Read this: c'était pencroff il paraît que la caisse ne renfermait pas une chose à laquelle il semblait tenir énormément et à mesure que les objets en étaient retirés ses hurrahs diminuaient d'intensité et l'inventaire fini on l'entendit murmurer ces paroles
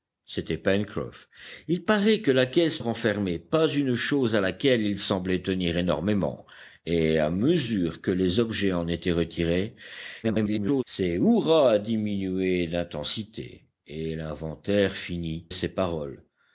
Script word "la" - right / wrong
right